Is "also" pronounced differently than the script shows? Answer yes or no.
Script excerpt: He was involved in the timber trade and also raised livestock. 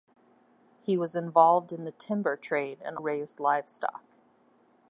yes